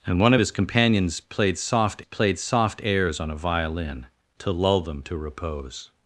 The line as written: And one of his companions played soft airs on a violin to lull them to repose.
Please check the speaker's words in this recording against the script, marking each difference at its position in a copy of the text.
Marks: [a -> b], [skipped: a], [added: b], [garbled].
And one of his companions played soft [added: played soft] airs on a violin to lull them to repose.